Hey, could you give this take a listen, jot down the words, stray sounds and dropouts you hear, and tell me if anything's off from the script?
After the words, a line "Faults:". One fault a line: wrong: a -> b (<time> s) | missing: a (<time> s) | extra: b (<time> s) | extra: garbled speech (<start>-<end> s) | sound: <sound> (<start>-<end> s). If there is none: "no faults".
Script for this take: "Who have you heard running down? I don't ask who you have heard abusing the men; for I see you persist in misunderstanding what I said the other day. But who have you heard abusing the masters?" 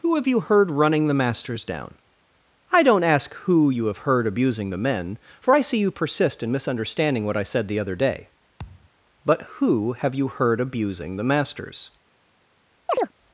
"Who have you heard running the masters down? I don't ask who you have heard abusing the men; for I see you persist in misunderstanding what I said the other day. But who have you heard abusing the masters?"
Faults:
extra: the masters (1.1 s)
sound: thud (8.6-8.9 s)
sound: chirp (12.9-13.1 s)